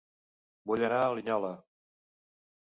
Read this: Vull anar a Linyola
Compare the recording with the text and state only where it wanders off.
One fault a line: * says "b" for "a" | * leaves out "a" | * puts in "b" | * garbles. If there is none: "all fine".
all fine